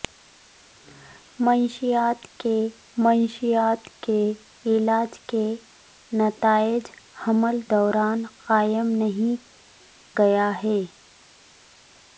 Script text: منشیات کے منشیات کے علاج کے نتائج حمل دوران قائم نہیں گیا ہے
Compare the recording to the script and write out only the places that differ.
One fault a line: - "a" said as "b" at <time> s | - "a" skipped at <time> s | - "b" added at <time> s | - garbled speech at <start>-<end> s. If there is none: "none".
none